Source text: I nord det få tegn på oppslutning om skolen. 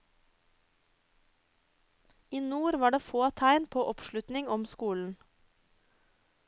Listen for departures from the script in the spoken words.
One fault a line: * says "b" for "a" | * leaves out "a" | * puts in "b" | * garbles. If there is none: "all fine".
* puts in "var"